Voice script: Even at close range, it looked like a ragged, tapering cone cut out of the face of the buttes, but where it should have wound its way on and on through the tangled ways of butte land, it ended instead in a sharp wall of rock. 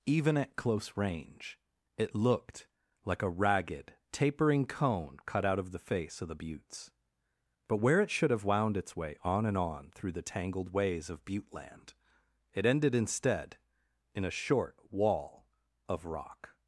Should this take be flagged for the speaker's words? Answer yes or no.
yes